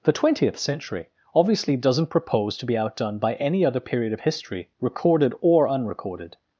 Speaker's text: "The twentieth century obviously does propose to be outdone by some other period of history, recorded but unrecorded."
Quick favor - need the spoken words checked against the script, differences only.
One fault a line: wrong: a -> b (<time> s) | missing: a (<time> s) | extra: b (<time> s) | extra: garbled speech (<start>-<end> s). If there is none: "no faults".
wrong: does -> doesn't (1.7 s)
wrong: some -> any (3.3 s)
wrong: but -> or (5.4 s)